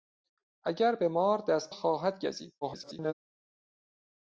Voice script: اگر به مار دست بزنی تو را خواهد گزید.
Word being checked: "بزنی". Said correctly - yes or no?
no